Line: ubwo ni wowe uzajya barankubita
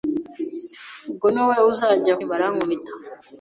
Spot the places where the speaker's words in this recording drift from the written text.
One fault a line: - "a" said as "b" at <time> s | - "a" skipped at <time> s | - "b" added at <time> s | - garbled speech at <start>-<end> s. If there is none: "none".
none